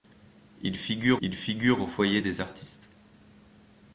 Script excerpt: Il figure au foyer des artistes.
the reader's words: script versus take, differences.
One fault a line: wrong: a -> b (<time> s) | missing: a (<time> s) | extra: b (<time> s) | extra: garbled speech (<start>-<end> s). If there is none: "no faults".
extra: il figure (1.2 s)